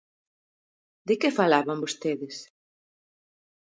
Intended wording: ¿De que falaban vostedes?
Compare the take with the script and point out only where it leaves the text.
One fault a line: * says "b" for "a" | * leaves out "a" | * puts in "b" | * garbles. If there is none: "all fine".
all fine